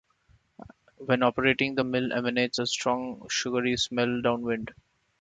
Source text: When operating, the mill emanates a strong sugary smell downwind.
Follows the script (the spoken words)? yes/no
yes